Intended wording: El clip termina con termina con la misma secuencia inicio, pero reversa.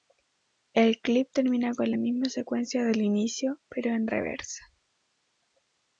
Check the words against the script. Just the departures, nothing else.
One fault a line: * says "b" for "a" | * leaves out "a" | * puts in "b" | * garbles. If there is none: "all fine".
* leaves out "termina con"
* puts in "del"
* puts in "en"